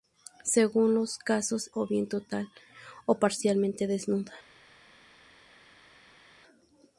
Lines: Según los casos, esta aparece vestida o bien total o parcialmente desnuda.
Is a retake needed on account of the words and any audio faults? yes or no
yes